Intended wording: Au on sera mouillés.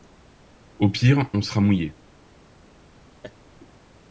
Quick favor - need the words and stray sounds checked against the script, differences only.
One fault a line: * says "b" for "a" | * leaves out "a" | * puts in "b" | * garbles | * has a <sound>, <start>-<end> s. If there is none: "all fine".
* puts in "pire"
* has a laugh, 3.2-3.4 s